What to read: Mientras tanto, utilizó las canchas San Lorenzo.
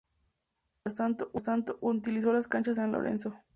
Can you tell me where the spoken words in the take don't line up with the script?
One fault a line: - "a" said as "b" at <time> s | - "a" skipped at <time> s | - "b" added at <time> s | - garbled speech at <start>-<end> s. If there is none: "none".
none